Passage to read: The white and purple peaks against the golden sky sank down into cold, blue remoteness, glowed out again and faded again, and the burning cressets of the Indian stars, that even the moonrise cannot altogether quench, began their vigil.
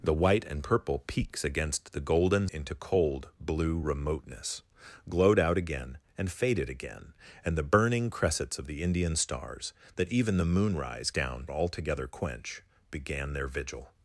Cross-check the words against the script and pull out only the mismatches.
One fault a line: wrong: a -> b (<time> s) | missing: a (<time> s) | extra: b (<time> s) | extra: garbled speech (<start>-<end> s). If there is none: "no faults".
missing: sky sank down (2.5 s)
wrong: cannot -> down (11.1 s)